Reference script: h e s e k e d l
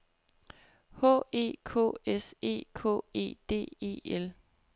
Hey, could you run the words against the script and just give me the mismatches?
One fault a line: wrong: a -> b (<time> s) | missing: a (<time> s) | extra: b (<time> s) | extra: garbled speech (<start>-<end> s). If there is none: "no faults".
extra: k (1.6 s)
extra: e (3.8 s)